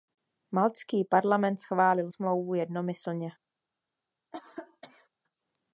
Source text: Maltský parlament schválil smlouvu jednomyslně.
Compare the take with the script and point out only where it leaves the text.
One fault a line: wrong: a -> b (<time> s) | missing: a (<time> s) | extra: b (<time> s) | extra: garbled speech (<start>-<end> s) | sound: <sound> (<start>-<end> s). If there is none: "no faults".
sound: cough (4.3-5.1 s)